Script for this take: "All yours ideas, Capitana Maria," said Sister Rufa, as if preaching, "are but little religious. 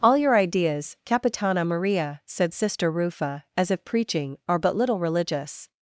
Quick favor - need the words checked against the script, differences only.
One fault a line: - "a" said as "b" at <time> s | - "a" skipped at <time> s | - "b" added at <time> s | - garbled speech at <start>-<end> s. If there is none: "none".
- "yours" said as "your" at 0.2 s